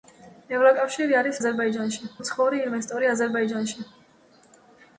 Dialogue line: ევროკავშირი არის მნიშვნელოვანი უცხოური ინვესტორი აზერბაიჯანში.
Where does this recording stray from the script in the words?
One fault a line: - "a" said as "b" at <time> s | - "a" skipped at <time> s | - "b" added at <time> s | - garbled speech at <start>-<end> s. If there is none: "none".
- "მნიშვნელოვანი" said as "აზერბაიჯანში" at 1.4 s